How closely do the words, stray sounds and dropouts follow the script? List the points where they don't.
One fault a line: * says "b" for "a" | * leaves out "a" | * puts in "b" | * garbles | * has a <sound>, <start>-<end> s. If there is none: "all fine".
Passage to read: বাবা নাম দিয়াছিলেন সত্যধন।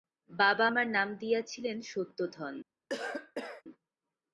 * puts in "আমার"
* has a cough, 2.9-3.6 s